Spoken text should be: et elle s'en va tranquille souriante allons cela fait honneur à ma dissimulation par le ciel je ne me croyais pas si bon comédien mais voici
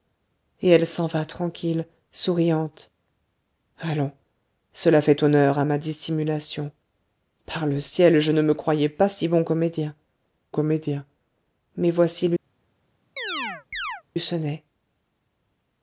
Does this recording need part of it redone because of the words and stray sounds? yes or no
yes